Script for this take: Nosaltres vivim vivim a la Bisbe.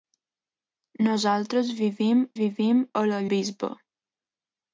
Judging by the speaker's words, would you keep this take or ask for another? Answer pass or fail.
pass